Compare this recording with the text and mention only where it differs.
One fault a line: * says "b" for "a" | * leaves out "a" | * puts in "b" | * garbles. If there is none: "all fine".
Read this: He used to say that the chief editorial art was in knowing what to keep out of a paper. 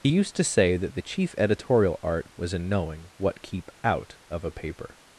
* leaves out "to"